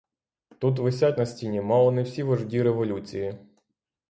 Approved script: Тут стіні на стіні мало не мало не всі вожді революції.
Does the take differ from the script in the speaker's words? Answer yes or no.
yes